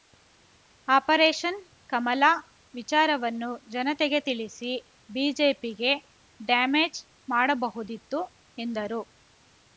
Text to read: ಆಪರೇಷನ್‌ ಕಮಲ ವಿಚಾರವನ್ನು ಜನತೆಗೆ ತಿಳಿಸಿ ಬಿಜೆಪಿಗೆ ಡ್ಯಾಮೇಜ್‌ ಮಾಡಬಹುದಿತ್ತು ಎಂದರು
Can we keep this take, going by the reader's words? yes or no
yes